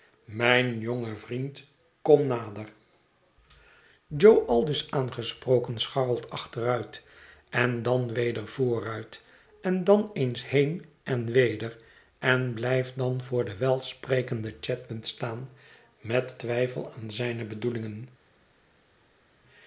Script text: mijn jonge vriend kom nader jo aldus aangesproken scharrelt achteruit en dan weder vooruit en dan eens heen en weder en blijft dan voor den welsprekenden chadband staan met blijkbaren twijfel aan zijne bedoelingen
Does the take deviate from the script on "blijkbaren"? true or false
true